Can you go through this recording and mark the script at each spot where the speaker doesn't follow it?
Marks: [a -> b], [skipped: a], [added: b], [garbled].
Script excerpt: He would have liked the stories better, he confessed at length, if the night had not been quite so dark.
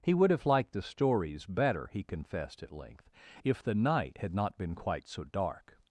He would have liked the stories better, he confessed at length, if the night had not been quite so dark.